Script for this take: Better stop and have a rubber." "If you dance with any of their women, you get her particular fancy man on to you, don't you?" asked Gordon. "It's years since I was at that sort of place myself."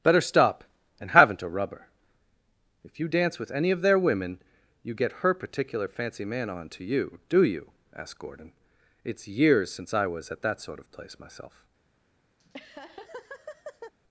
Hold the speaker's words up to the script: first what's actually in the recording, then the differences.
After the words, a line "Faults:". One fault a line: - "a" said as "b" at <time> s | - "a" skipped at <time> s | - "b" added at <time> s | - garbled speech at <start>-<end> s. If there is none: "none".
Better stop and haven't a rubber." "If you dance with any of their women, you get her particular fancy man on to you, do you?" asked Gordon. "It's years since I was at that sort of place myself."
Faults:
- "have" said as "haven't" at 1.1 s
- "don't" said as "do" at 7.3 s